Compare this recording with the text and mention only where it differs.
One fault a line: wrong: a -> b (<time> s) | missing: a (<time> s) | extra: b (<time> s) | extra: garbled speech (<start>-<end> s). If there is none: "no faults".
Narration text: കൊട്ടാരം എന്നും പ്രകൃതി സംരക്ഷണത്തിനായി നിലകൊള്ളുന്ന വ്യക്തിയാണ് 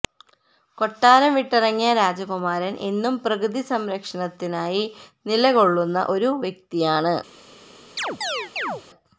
extra: വിട്ടിറങ്ങിയ രാജകുമാരൻ (1.4 s)
extra: ഒരു (6.1 s)